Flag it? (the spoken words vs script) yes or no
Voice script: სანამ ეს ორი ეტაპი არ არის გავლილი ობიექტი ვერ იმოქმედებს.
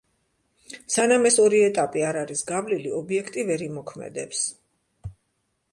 no